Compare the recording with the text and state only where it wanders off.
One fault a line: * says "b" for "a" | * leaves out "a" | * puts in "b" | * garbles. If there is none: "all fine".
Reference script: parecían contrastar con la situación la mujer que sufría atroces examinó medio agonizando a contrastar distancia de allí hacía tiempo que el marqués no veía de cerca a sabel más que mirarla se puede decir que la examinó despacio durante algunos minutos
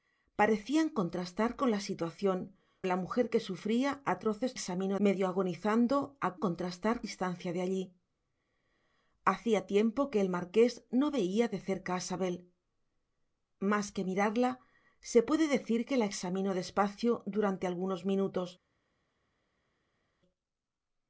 all fine